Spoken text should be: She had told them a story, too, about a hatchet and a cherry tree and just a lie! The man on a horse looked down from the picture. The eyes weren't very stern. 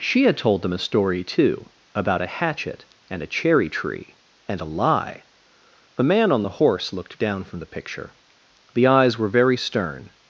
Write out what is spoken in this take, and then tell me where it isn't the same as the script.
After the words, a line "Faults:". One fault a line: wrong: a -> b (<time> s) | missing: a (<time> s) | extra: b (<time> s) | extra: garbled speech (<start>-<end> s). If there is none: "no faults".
She had told them a story, too, about a hatchet and a cherry tree and a lie! The man on the horse looked down from the picture. The eyes were very stern.
Faults:
missing: just (4.6 s)
wrong: a -> the (6.4 s)
wrong: weren't -> were (9.2 s)